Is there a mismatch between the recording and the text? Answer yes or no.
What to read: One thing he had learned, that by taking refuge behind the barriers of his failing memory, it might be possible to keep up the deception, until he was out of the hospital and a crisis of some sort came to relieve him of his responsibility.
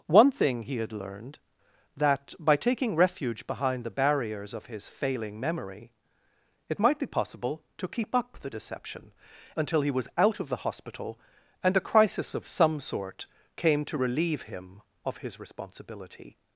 no